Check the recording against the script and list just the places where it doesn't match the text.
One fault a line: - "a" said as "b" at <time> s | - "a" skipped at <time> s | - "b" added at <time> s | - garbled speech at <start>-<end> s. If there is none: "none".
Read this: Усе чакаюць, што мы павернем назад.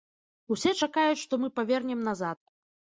none